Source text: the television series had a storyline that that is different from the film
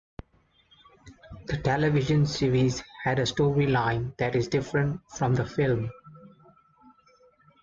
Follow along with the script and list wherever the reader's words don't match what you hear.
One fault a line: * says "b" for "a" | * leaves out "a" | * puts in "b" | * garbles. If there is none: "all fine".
* leaves out "that"